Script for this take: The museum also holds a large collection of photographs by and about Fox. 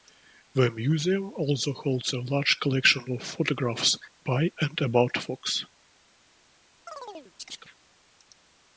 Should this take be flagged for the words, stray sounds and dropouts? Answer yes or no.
yes